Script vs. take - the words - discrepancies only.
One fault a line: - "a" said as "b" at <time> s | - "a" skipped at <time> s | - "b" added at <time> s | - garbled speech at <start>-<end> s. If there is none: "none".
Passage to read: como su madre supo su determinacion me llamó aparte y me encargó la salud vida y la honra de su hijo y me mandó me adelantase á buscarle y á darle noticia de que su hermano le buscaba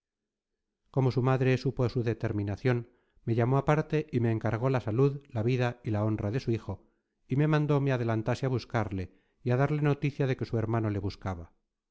- "la" added at 5.3 s